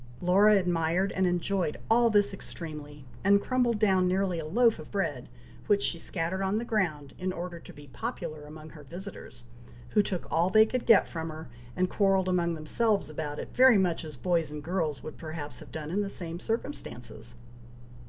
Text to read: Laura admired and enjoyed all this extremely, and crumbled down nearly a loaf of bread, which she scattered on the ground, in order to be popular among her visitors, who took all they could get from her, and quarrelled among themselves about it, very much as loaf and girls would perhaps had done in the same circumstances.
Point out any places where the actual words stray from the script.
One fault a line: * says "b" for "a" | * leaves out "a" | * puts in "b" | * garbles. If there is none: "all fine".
* says "boys" for "loaf"
* says "have" for "had"